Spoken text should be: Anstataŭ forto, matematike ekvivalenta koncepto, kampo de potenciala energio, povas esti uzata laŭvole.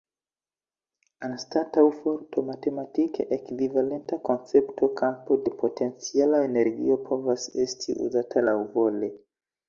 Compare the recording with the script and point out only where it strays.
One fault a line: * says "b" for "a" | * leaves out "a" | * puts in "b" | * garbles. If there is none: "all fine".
all fine